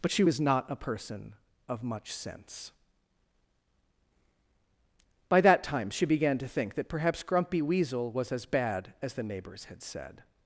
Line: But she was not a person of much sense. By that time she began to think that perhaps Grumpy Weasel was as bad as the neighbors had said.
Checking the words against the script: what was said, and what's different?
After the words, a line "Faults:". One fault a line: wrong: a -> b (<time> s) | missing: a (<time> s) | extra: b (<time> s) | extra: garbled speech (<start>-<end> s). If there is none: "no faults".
But she was not a person of much sense. By that time she began to think that perhaps Grumpy Weasel was as bad as the neighbors had said.
Faults:
no faults